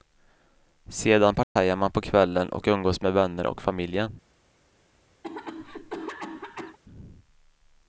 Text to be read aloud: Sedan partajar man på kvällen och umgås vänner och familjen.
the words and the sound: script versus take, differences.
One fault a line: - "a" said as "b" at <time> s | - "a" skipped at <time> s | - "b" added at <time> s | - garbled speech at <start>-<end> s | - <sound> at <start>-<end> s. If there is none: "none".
- dropout at 1.4-1.6 s
- "med" added at 3.0 s
- cough at 5.2-6.8 s